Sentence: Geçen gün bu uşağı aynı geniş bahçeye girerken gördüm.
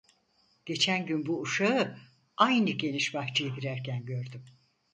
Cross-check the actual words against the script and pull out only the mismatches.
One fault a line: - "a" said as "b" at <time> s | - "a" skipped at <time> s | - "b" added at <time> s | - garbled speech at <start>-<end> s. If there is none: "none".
none